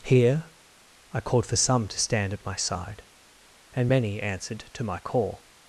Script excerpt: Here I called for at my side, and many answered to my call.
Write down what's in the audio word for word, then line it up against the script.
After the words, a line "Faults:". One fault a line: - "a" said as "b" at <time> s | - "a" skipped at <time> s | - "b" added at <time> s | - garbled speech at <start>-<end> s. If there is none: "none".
Here I called for some to stand at my side, and many answered to my call.
Faults:
- "some to stand" added at 1.6 s